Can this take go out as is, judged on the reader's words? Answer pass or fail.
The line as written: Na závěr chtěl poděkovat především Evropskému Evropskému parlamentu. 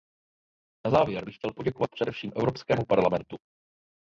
fail